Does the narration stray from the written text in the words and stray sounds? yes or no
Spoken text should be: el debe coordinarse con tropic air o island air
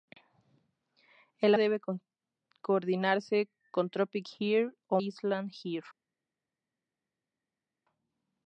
no